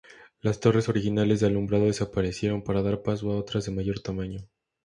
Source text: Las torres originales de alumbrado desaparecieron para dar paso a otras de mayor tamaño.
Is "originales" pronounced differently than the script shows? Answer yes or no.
no